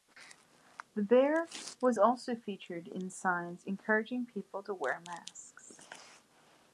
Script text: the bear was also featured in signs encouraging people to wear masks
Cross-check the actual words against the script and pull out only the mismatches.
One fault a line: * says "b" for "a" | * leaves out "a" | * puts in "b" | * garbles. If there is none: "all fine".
all fine